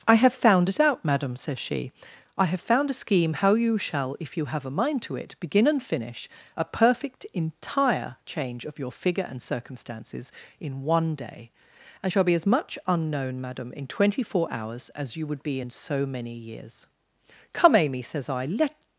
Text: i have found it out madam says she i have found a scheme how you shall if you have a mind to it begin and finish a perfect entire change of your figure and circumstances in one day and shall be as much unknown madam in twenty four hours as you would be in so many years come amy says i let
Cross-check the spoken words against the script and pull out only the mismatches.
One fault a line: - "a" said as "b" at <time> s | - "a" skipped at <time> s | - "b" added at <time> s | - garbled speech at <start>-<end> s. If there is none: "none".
none